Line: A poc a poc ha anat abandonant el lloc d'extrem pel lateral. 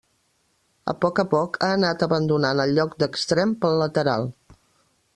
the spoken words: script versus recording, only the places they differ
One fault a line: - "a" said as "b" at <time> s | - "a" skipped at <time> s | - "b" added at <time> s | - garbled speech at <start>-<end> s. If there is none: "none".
none